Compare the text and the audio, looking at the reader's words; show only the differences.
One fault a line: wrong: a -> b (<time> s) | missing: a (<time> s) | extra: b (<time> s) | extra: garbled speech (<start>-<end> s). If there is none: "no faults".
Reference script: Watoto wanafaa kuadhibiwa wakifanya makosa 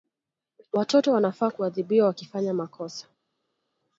no faults